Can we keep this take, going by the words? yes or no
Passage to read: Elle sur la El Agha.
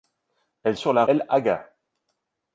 yes